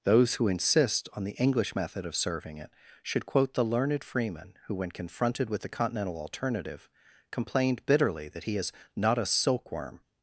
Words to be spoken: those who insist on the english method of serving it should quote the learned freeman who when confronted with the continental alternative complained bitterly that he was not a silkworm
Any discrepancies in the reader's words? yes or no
yes